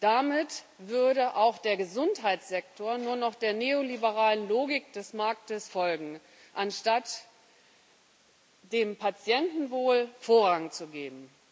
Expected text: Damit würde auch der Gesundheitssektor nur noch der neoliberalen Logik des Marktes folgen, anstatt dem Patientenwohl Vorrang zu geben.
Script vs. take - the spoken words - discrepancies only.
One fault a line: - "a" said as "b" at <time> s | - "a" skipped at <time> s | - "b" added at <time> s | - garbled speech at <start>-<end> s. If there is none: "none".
none